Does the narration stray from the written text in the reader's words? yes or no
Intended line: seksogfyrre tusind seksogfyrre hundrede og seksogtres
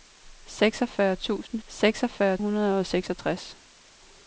no